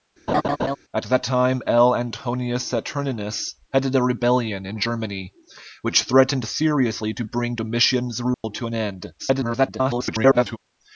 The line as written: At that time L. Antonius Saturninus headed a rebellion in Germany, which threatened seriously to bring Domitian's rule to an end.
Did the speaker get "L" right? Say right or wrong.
right